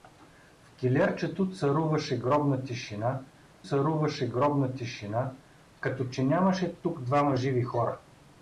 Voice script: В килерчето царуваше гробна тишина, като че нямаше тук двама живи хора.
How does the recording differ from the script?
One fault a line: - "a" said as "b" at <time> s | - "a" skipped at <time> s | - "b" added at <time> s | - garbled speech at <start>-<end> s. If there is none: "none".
- "царуваше гробна тишина" added at 3.6 s